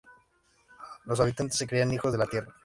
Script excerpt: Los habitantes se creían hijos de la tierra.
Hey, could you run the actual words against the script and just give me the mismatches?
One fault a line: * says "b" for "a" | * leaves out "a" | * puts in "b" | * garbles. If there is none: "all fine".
all fine